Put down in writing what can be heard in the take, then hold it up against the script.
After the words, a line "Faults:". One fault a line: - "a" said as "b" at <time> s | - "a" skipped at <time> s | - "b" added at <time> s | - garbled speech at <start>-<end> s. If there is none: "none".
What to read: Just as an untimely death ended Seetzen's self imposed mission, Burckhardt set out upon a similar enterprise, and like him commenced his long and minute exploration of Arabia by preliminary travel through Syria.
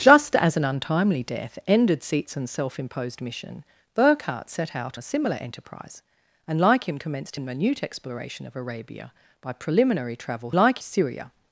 Just as an untimely death ended Seetzen's self imposed mission, Burckhardt set out a similar enterprise, and like him commenced and minute exploration of Arabia by preliminary travel like Syria.
Faults:
- "upon" skipped at 5.0 s
- "his long" skipped at 7.4 s
- "through" said as "like" at 10.5 s